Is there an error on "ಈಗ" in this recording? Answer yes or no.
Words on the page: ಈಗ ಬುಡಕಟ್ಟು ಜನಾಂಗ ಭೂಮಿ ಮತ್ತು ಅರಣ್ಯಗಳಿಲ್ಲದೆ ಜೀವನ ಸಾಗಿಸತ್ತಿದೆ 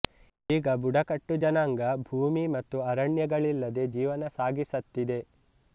no